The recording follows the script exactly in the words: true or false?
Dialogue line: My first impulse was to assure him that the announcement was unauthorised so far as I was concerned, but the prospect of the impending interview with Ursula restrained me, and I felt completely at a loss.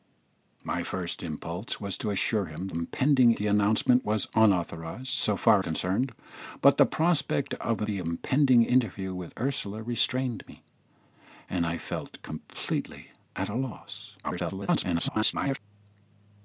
false